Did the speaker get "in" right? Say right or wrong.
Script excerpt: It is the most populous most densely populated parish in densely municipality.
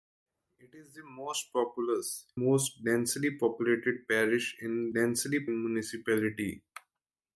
right